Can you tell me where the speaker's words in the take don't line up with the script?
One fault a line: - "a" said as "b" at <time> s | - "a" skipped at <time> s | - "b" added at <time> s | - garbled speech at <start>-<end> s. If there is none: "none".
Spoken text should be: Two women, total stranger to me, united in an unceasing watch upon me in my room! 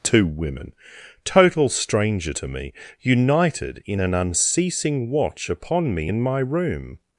none